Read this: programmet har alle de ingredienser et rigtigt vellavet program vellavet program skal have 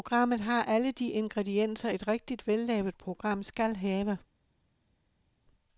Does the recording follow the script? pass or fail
fail